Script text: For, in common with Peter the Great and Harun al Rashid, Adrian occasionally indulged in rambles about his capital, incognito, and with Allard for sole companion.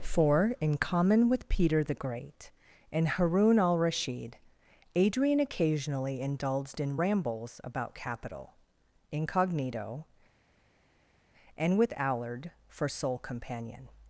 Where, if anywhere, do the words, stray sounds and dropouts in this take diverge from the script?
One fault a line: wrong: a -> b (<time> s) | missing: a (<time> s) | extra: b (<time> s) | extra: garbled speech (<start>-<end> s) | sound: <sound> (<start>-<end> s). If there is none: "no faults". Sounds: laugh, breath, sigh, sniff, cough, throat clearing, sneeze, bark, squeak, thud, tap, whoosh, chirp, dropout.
missing: his (7.9 s)